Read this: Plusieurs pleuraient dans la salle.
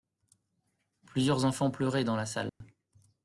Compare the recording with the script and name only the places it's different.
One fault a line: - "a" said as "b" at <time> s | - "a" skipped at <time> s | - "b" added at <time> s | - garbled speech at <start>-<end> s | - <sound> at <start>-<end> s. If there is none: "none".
- "enfants" added at 1.4 s
- dropout at 2.5-2.6 s